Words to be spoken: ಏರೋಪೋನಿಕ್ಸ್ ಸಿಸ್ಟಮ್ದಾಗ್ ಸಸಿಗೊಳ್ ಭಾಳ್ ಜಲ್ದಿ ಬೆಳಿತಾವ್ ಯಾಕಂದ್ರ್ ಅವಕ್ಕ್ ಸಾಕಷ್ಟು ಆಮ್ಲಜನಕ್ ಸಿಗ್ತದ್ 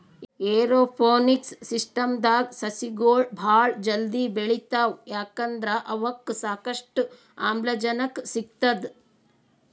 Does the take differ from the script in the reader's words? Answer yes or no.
no